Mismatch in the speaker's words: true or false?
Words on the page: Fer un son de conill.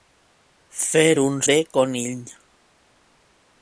true